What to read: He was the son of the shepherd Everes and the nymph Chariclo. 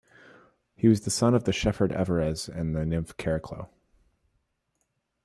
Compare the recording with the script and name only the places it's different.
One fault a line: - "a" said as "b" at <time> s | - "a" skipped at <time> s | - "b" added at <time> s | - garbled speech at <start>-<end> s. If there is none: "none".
none